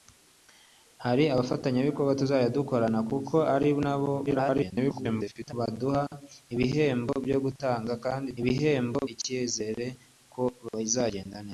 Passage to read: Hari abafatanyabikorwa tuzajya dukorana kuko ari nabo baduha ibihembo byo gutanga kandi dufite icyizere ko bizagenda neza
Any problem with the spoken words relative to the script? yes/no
yes